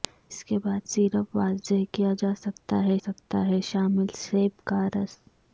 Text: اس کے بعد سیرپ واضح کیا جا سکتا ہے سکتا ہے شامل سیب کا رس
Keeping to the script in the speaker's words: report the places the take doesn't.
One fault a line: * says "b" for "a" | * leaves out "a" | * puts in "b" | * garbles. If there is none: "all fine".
all fine